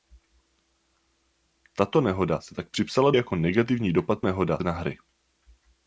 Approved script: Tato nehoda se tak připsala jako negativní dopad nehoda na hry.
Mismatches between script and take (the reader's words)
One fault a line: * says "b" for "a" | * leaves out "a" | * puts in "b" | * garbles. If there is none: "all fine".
all fine